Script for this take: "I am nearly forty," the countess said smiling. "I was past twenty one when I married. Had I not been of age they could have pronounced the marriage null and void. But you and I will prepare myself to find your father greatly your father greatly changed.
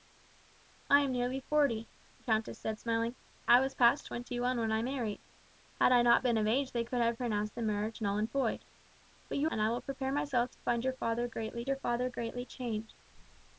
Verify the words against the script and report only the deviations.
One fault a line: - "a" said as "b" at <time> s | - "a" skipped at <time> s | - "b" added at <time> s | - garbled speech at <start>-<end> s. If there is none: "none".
none